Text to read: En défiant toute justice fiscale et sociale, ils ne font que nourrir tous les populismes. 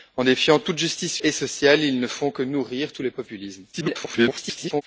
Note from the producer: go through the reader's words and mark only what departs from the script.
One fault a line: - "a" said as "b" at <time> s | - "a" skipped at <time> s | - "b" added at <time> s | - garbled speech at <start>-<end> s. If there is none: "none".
- "fiscale" skipped at 1.2 s
- garbled speech at 3.7-4.8 s